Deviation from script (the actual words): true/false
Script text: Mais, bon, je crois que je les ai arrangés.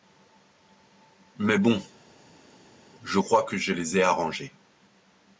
false